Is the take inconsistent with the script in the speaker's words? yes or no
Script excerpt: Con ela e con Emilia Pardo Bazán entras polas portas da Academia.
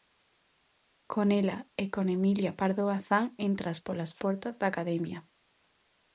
no